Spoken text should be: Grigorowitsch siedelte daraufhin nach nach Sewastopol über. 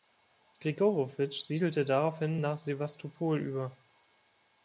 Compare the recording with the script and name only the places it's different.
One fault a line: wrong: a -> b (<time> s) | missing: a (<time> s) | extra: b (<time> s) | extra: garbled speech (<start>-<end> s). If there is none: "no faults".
missing: nach (2.6 s)